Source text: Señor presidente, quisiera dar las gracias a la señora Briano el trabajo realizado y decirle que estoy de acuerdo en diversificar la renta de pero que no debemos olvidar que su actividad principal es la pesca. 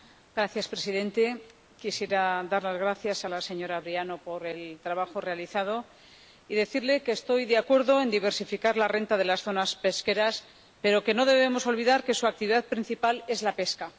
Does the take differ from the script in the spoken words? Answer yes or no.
yes